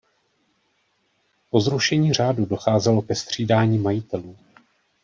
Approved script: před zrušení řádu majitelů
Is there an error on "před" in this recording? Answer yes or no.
yes